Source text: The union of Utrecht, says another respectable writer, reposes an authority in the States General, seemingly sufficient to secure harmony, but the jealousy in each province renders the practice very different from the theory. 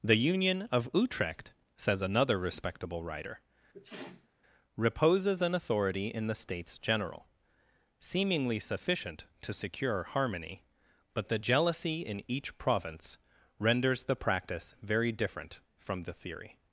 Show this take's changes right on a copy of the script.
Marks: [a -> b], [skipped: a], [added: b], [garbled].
The union of Utrecht, says another respectable writer, reposes an authority in the States General, seemingly sufficient to secure harmony, but the jealousy in each province renders the practice very different from the theory.